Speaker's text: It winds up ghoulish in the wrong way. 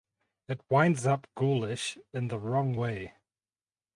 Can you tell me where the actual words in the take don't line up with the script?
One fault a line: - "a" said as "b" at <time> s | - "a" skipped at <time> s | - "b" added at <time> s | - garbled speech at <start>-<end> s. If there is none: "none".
none